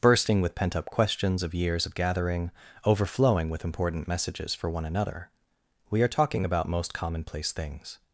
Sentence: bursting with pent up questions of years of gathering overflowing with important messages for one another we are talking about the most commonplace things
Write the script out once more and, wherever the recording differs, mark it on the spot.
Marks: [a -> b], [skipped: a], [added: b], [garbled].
bursting with pent up questions of years of gathering overflowing with important messages for one another we are talking about [skipped: the] most commonplace things